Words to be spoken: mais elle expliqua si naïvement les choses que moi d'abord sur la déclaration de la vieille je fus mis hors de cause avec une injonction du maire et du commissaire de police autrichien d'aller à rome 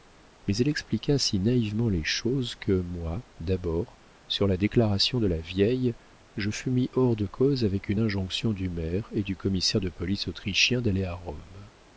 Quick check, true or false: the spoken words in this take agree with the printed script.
true